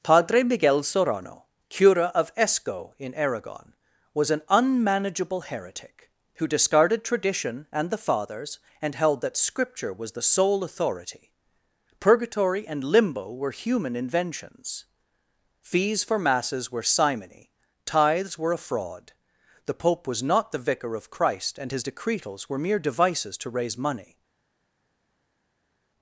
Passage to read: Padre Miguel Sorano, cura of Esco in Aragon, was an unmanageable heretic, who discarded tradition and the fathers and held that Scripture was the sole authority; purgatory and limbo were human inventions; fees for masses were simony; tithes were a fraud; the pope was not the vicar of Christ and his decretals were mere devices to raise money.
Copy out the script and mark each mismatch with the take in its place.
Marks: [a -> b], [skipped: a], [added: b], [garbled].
Padre Miguel Sorano, cura of Esco in Aragon, was an unmanageable heretic, who discarded tradition and the fathers and held that Scripture was the sole authority; purgatory and limbo were human inventions; fees for masses were simony; tithes were a fraud; the pope was not the vicar of Christ and his decretals were mere devices to raise money.